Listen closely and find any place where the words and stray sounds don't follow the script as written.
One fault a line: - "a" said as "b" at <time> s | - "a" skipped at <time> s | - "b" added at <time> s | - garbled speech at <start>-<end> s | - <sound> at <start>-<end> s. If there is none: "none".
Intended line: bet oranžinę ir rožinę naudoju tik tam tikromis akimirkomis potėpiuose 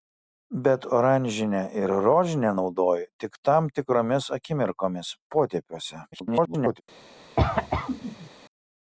- garbled speech at 6.1-6.8 s
- cough at 7.4-8.3 s